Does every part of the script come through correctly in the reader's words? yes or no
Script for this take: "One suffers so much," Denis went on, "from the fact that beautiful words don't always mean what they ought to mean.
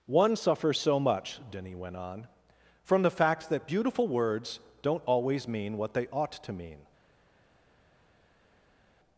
yes